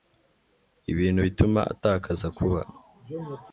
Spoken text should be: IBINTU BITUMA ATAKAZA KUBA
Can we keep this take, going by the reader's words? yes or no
yes